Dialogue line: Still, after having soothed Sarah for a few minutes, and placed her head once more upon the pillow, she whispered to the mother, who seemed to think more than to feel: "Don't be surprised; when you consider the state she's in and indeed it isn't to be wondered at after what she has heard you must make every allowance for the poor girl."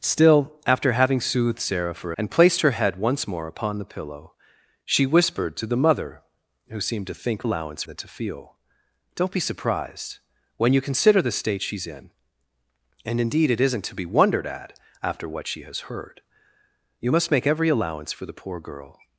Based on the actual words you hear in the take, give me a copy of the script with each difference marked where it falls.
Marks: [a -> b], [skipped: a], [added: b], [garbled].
Still, after having soothed Sarah for [skipped: a few minutes,] and placed her head once more upon the pillow, she whispered to the mother, who seemed to think [more -> allowance] than to feel: "Don't be surprised; when you consider the state she's in and indeed it isn't to be wondered at after what she has heard you must make every allowance for the poor girl."